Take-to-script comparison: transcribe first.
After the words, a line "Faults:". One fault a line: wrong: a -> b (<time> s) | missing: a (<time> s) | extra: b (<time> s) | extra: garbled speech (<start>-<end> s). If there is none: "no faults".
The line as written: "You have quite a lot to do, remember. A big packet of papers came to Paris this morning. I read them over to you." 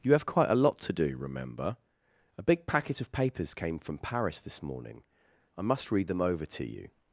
"You have quite a lot to do, remember. A big packet of papers came from Paris this morning. I must read them over to you."
Faults:
wrong: to -> from (3.8 s)
extra: must (5.6 s)